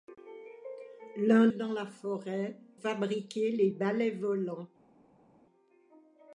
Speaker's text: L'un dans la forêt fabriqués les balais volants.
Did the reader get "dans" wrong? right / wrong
right